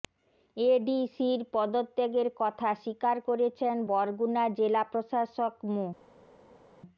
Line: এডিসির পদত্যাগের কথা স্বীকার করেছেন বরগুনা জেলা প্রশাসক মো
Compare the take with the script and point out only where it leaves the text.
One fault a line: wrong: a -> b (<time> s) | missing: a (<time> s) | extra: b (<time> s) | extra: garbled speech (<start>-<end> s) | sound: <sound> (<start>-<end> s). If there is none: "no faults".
no faults